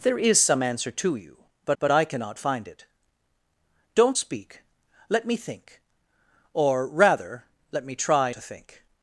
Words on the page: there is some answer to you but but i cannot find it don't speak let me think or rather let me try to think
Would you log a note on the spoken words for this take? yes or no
no